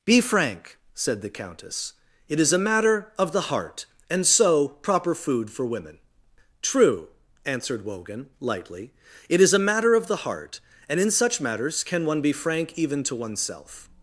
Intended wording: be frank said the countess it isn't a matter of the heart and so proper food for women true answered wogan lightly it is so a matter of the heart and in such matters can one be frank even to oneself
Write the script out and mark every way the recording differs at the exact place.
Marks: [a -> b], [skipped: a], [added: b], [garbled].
be frank said the countess it [isn't -> is] a matter of the heart and so proper food for women true answered wogan lightly it is [skipped: so] a matter of the heart and in such matters can one be frank even to oneself